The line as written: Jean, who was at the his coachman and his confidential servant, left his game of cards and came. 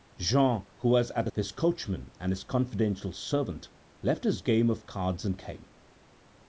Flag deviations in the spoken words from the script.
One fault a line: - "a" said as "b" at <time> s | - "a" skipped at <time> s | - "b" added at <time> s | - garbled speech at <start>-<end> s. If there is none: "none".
none